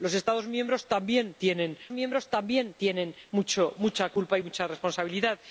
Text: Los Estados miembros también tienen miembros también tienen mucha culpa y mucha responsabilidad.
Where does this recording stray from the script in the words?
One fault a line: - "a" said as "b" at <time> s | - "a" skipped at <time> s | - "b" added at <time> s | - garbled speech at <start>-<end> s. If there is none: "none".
none